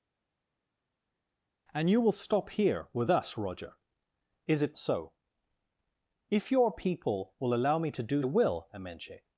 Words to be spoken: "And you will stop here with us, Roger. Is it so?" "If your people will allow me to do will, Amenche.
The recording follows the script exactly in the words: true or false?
true